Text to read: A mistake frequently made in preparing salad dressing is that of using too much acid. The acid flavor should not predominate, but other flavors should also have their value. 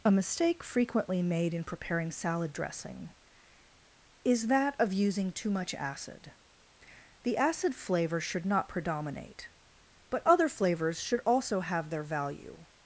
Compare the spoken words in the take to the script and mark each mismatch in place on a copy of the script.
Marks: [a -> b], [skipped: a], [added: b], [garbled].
A mistake frequently made in preparing salad dressing is that of using too much acid. The acid flavor should not predominate, but other flavors should also have their value.